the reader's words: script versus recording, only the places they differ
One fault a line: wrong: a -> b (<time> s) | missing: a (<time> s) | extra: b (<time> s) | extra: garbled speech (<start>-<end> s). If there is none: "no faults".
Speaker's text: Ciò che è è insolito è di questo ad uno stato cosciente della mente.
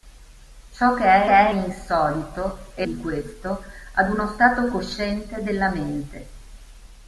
no faults